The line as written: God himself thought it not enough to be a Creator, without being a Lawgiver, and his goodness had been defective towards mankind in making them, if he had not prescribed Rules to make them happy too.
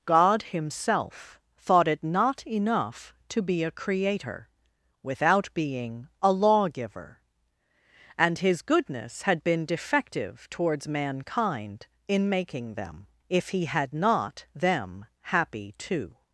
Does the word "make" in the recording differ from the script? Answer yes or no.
yes